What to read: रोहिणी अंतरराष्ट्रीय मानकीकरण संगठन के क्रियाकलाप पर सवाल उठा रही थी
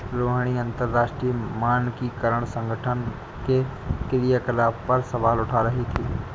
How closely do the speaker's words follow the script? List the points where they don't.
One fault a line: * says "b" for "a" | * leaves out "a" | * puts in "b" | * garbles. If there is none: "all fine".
all fine